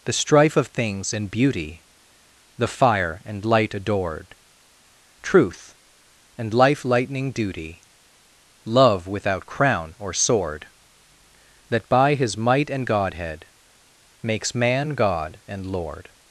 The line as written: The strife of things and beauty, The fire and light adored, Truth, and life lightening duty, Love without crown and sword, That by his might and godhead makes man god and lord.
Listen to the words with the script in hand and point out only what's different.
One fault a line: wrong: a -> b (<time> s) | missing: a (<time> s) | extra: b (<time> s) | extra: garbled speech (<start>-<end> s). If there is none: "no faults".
wrong: and -> or (10.0 s)